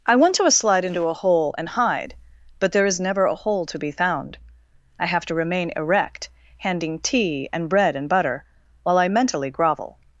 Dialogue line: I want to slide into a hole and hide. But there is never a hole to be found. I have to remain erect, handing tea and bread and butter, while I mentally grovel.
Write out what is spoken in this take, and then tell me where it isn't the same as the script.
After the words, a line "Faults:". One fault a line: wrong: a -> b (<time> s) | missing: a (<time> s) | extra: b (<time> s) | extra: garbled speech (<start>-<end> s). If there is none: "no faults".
I want to slide into a hole and hide. But there is never a hole to be found. I have to remain erect, handing tea and bread and butter, while I mentally grovel.
Faults:
no faults